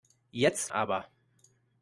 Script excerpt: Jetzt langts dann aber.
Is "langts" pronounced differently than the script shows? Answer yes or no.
yes